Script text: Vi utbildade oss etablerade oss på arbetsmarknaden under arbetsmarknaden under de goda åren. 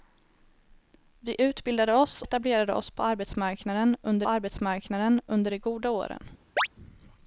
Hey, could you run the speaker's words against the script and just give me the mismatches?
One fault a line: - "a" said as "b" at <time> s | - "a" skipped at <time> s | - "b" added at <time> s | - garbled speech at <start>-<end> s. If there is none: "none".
none